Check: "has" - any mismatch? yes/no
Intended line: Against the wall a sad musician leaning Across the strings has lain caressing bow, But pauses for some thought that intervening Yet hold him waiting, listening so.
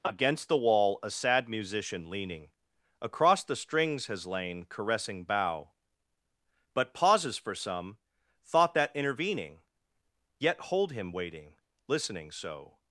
no